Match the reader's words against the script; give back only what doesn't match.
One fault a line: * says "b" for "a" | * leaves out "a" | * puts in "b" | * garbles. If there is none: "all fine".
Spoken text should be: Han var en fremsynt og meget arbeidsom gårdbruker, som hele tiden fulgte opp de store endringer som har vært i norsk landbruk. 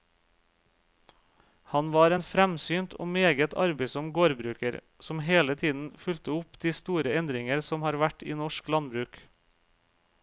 all fine